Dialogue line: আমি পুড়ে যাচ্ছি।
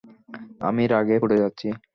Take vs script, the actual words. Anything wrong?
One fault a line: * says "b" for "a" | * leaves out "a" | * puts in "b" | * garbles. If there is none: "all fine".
* puts in "রাগে"